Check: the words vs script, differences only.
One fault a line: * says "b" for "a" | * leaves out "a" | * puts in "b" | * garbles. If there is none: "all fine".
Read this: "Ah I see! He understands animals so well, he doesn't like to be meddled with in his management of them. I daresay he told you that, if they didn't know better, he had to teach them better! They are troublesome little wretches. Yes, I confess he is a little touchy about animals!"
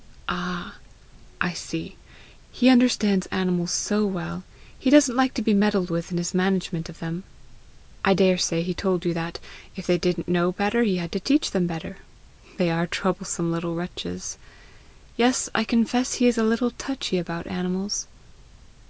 all fine